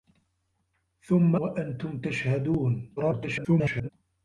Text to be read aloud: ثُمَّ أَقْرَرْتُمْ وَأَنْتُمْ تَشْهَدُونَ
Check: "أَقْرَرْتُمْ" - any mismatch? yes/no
yes